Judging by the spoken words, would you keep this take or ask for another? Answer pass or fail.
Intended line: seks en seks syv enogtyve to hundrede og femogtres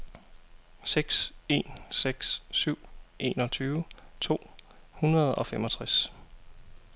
pass